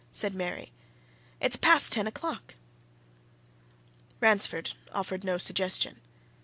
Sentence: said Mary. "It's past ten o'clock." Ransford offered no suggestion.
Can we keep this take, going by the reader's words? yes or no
yes